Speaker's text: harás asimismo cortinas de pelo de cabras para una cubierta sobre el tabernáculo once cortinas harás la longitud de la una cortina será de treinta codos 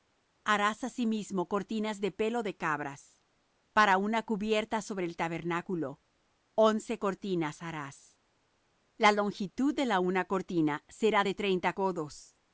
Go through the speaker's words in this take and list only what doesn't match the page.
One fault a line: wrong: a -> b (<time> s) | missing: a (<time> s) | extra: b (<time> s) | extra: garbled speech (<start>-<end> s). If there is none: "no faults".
no faults